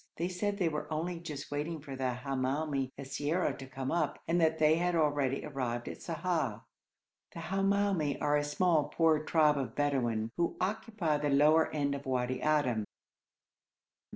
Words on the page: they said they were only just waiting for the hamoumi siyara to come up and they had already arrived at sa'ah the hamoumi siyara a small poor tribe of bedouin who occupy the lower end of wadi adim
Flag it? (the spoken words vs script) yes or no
yes